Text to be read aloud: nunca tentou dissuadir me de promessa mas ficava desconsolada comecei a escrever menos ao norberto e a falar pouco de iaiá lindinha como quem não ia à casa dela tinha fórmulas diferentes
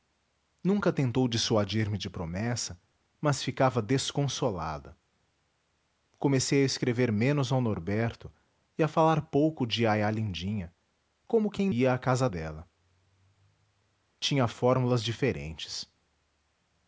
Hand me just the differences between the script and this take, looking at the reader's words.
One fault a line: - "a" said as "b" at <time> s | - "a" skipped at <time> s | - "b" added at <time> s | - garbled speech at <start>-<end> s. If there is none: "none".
- "não" skipped at 11.7 s